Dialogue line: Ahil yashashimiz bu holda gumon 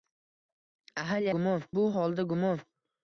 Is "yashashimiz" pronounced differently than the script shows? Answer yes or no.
yes